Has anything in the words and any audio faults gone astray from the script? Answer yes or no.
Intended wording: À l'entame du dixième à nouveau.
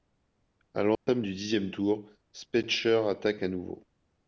yes